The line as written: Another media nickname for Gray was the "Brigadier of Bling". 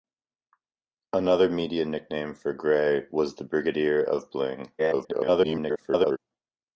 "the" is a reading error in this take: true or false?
false